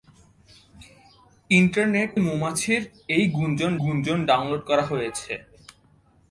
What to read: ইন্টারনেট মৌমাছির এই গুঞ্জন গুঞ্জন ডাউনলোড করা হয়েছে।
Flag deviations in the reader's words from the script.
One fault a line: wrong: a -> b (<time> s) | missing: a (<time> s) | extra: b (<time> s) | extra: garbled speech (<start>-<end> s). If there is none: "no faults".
no faults